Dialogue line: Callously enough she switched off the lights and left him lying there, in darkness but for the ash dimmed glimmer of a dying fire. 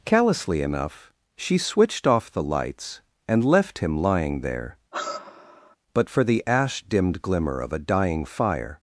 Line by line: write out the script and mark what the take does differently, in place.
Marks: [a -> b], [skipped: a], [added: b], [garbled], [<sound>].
Callously enough she switched off the lights and left him lying there, [skipped: in darkness] [sigh] but for the ash dimmed glimmer of a dying fire.